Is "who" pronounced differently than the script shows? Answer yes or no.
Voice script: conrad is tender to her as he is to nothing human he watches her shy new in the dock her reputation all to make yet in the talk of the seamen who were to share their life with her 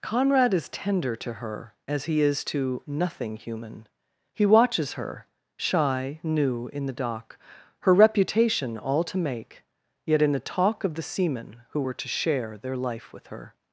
no